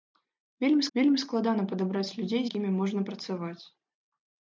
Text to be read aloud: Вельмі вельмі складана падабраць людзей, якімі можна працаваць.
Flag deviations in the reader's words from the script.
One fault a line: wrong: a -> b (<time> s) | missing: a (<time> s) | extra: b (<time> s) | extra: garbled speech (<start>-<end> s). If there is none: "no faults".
no faults